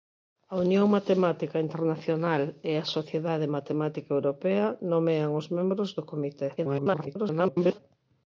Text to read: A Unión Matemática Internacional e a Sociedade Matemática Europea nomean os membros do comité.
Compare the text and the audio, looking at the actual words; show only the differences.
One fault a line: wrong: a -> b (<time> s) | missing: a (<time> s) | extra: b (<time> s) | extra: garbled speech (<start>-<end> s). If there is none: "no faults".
extra: garbled speech (6.6-7.8 s)